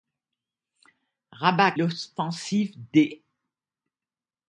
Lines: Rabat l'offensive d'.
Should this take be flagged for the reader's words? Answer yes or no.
no